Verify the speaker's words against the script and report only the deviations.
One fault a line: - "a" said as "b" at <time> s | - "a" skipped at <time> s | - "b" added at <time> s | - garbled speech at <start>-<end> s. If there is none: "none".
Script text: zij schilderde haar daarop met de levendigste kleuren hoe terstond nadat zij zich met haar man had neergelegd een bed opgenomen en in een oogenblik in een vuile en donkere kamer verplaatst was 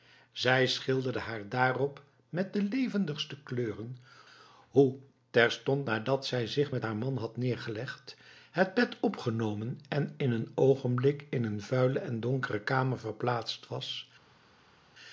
- "een" said as "het" at 8.5 s